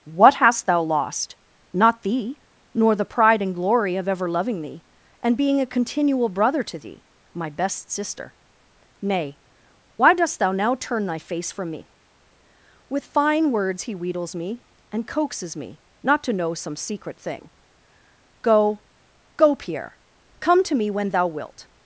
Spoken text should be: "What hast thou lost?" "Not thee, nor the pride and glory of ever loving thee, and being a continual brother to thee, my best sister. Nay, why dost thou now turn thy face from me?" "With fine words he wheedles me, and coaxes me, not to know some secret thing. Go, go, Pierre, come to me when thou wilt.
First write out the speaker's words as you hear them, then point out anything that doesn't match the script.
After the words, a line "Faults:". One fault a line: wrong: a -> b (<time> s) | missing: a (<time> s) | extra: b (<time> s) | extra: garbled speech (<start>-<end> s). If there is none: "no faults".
"What hast thou lost?" "Not thee, nor the pride and glory of ever loving thee, and being a continual brother to thee, my best sister. Nay, why dost thou now turn thy face from me?" "With fine words he wheedles me, and coaxes me, not to know some secret thing. Go, go, Pierre, come to me when thou wilt.
Faults:
no faults